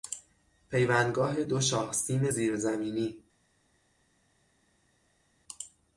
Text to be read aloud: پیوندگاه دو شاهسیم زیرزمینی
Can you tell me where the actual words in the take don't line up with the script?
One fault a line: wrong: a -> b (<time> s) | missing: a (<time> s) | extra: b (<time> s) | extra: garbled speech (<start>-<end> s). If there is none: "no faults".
no faults